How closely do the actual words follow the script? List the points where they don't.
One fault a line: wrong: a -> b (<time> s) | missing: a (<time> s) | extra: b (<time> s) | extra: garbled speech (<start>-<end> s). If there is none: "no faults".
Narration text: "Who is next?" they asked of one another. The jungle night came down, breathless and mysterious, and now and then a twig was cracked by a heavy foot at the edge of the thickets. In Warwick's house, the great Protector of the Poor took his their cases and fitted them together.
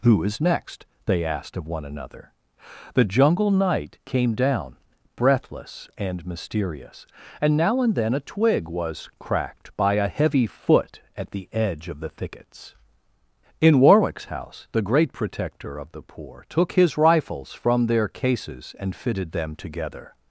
extra: rifles from (17.0 s)